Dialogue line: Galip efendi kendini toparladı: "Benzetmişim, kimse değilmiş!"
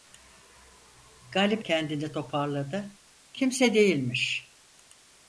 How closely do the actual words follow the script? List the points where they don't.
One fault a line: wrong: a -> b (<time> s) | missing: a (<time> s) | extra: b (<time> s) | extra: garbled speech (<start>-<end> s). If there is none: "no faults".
missing: efendi (1.6 s)
missing: Benzetmişim (3.0 s)